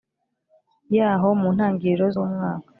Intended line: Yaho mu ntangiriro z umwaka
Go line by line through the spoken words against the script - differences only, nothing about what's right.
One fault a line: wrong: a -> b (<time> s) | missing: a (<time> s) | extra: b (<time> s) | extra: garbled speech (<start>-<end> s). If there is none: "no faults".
no faults